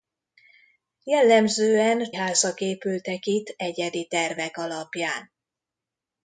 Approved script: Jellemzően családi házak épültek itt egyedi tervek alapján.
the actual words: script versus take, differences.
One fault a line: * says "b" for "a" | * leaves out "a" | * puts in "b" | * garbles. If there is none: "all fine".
* leaves out "családi"